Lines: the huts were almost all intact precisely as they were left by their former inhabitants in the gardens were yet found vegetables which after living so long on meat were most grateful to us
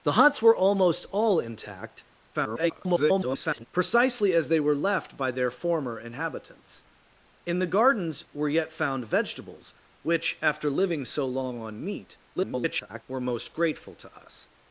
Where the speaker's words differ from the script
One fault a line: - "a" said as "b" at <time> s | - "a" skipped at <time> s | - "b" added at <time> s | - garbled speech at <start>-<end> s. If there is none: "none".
- garbled speech at 2.3-3.7 s
- garbled speech at 12.4-13.0 s